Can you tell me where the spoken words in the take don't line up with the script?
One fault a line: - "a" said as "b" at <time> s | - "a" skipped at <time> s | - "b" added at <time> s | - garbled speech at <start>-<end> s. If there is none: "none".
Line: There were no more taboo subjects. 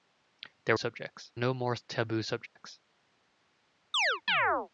- "were" said as "subjects" at 0.7 s